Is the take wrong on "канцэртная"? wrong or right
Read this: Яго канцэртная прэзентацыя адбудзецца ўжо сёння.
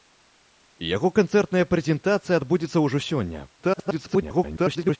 right